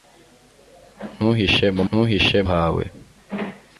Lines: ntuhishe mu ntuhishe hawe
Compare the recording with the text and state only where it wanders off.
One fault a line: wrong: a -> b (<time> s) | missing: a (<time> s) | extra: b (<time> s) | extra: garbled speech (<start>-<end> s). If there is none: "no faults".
no faults